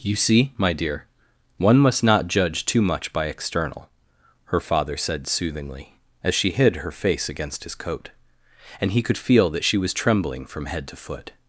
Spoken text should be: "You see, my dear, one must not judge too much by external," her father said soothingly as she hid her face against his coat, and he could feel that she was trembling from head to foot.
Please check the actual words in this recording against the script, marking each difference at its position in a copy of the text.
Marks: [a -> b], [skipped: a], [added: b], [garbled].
"You see, my dear, one must not judge too much by external," her father said soothingly as she hid her face against his coat, and he could feel that she was trembling from head to foot.